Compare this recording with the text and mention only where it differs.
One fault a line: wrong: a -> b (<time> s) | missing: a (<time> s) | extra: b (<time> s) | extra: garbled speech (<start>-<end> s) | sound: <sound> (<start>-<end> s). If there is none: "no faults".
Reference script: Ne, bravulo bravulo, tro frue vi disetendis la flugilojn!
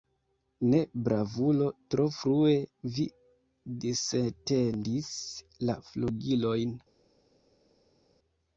missing: bravulo (1.7 s)